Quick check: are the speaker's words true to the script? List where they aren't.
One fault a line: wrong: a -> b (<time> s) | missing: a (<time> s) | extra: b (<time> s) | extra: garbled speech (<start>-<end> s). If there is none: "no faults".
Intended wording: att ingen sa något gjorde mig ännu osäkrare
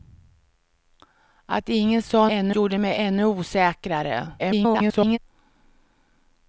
wrong: något -> ännu (2.3 s)
extra: garbled speech (4.4-5.2 s)